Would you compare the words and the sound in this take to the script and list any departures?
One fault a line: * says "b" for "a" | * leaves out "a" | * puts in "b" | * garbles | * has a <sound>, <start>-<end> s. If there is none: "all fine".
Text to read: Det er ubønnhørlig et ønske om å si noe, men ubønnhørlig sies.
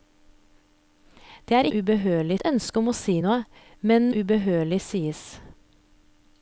all fine